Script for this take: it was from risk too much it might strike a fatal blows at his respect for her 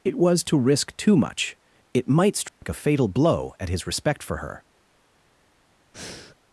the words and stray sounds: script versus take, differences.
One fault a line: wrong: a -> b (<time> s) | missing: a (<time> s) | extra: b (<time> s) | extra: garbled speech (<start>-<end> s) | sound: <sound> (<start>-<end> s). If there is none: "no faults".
wrong: from -> to (0.4 s)
sound: dropout (2.5-2.6 s)
wrong: blows -> blow (3.1 s)
sound: breath (5.9-6.4 s)